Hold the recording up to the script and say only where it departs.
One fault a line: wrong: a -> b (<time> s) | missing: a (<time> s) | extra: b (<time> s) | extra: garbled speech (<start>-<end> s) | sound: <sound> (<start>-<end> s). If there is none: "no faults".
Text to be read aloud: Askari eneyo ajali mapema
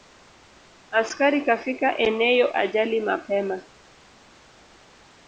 extra: kafika (1.4 s)